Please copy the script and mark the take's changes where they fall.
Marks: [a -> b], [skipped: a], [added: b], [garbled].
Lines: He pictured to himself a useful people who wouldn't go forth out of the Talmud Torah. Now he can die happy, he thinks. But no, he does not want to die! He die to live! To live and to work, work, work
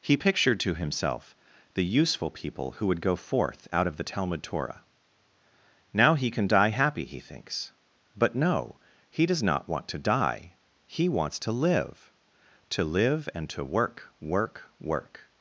He pictured to himself [a -> the] useful people who [wouldn't -> would] go forth out of the Talmud Torah. Now he can die happy, he thinks. But no, he does not want to die! He [die -> wants] to live! To live and to work, work, work